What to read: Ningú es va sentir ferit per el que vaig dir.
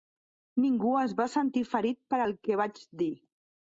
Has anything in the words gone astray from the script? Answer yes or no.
no